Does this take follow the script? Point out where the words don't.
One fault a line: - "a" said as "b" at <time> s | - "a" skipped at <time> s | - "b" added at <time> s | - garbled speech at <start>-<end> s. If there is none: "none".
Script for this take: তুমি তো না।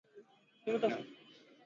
none